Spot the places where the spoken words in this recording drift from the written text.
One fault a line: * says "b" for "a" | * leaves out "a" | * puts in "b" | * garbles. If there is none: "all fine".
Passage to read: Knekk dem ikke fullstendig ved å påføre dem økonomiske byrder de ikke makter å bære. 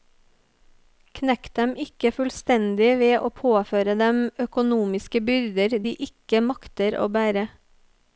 all fine